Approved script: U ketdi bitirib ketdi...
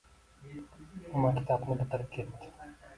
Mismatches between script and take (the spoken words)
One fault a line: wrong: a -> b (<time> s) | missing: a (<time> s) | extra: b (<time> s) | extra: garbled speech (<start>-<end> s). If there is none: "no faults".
wrong: ketdi -> maktabni (1.3 s)